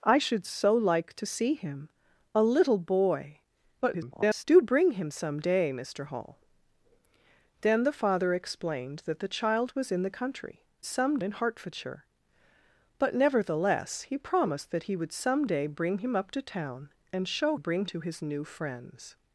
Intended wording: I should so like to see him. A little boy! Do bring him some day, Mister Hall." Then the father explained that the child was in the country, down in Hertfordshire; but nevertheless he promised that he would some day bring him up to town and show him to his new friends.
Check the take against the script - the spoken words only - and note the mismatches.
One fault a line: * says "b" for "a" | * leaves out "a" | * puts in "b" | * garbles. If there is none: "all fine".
* garbles
* says "some" for "down"
* says "bring" for "him"